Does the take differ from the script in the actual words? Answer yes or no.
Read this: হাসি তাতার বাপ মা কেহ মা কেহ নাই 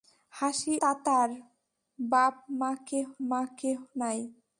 no